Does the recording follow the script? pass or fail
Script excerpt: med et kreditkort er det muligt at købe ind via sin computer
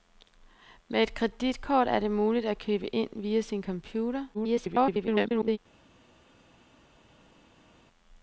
fail